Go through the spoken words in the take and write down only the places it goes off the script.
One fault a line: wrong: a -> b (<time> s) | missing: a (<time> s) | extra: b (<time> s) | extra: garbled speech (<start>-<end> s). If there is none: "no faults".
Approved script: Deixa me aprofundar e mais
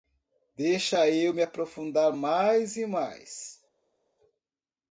extra: eu (1.1 s)
extra: mais (2.1 s)